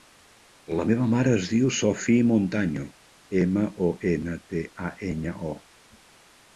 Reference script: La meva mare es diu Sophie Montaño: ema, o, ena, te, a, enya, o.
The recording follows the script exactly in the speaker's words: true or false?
true